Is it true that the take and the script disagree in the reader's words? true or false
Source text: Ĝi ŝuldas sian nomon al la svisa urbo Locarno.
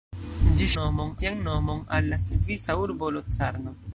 true